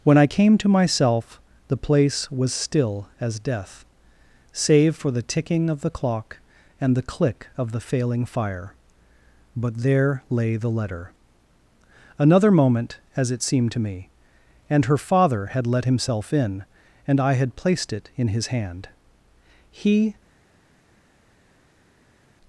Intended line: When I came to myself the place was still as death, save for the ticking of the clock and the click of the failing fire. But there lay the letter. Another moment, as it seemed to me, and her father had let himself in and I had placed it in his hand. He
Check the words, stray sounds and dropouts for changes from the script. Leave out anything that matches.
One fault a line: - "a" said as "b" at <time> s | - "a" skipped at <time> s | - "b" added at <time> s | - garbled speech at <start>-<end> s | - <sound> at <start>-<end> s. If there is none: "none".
none